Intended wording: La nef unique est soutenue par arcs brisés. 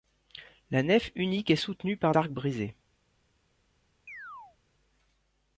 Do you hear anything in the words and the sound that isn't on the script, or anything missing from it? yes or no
yes